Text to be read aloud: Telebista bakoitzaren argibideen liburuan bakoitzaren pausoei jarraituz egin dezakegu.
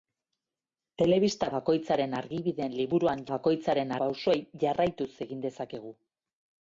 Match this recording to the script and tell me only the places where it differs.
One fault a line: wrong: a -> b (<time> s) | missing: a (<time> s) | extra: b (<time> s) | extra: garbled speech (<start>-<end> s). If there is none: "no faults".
no faults